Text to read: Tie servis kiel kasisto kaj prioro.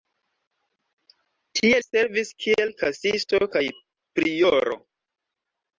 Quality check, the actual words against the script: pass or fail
pass